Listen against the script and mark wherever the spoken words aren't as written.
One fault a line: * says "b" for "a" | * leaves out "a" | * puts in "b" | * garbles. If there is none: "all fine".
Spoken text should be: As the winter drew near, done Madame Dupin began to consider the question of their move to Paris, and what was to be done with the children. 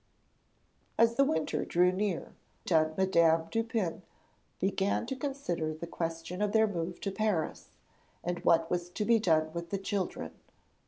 all fine